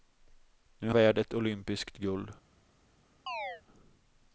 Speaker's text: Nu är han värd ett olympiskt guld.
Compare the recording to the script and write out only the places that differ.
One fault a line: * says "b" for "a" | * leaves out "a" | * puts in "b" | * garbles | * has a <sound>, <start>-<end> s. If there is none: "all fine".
* leaves out "han"
* has a chirp, 3.3-3.6 s